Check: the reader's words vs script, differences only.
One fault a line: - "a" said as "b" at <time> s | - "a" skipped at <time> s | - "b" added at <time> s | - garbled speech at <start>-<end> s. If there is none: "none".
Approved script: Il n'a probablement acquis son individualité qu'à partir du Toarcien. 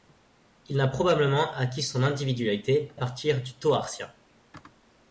- "qu'à" skipped at 2.9 s